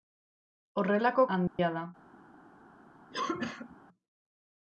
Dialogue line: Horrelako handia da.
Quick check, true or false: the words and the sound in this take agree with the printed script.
false